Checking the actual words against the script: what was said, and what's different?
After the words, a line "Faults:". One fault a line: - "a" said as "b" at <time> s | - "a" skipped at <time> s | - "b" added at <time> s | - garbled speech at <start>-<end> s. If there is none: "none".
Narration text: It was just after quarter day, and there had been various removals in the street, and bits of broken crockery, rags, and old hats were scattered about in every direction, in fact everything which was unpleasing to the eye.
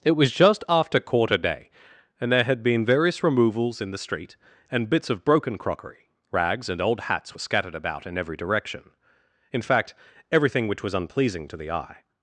It was just after quarter day, and there had been various removals in the street, and bits of broken crockery, rags, and old hats were scattered about in every direction, in fact everything which was unpleasing to the eye.
Faults:
none